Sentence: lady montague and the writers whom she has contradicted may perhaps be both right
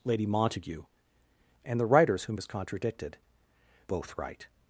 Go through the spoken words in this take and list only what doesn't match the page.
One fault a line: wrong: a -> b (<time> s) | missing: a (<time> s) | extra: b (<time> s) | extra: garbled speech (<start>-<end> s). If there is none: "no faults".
missing: she (2.4 s)
missing: may perhaps be (3.2 s)